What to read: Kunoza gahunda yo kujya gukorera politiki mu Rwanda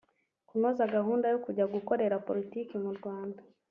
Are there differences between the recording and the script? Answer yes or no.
no